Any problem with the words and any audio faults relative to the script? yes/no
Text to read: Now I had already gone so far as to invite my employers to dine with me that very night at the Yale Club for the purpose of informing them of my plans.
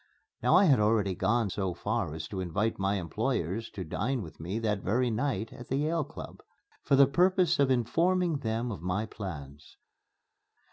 no